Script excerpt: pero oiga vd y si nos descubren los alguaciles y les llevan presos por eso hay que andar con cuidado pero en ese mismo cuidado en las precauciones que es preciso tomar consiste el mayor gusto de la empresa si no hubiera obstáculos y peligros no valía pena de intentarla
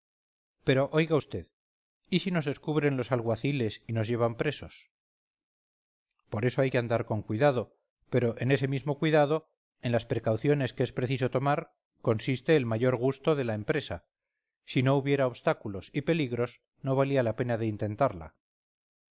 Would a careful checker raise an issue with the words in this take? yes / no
yes